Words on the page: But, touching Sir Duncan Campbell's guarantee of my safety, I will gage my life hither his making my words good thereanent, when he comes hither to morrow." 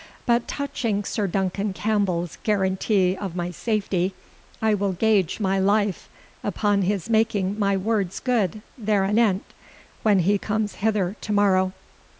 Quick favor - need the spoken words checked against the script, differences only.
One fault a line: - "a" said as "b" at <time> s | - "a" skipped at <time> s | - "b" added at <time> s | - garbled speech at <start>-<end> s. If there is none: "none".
- "hither" said as "upon" at 6.4 s